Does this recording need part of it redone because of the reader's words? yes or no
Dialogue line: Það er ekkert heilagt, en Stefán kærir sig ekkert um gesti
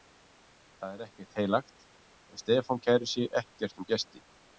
no